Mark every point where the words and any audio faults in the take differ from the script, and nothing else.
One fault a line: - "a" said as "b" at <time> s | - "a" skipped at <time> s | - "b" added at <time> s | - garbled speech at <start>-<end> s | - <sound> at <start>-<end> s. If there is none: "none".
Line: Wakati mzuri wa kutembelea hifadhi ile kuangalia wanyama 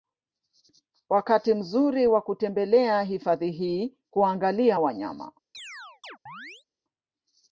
- "ile" said as "hii" at 3.5 s
- chirp at 5.5-6.6 s